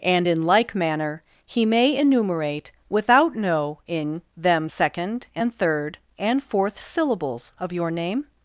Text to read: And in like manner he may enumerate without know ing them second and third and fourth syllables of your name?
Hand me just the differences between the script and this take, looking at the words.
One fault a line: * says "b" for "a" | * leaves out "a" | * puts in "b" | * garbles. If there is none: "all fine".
all fine